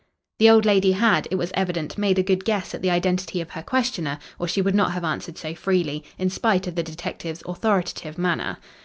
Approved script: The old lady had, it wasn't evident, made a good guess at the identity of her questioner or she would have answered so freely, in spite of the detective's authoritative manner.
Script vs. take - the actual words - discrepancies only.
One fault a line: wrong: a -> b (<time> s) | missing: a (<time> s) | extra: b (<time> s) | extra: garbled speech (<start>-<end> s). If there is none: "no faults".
wrong: wasn't -> was (1.4 s)
extra: not (4.7 s)